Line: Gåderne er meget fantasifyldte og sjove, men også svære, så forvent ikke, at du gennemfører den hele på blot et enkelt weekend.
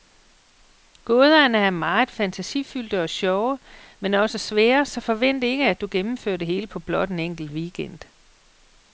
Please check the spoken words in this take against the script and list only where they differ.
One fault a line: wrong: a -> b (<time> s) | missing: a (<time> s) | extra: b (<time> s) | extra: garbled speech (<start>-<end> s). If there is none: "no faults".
wrong: den -> det (6.4 s)
wrong: et -> en (7.1 s)